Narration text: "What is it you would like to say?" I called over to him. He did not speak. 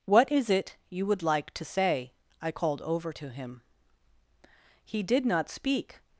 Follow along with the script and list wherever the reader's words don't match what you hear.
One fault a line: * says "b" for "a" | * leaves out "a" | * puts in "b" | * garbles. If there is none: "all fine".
all fine